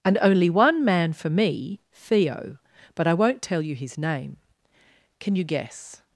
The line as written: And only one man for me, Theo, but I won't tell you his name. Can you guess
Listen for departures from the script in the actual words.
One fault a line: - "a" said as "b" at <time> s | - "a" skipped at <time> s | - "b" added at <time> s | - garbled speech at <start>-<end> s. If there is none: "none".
none